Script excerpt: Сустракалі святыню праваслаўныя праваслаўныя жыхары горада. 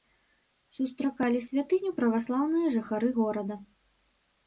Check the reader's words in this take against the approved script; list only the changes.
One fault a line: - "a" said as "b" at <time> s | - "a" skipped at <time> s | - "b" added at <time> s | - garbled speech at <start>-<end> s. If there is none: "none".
- "праваслаўныя" skipped at 2.7 s